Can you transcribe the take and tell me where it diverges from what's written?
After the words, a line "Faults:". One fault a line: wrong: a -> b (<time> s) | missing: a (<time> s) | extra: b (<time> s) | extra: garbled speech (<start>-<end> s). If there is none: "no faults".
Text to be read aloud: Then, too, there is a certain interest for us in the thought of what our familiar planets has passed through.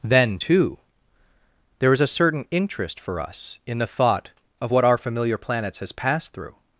Then, too, there is a certain interest for us in the thought of what our familiar planets has passed through.
Faults:
no faults